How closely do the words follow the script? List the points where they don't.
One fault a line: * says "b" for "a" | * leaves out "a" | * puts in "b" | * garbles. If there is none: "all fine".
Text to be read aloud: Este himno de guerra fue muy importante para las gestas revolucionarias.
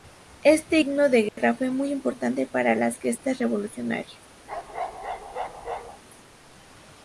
all fine